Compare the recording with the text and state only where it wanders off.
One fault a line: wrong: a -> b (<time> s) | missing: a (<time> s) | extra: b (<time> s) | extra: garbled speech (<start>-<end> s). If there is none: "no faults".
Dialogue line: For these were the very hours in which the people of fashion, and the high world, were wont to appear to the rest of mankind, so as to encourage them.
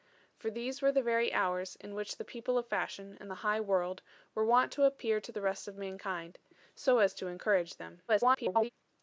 extra: garbled speech (8.1-8.7 s)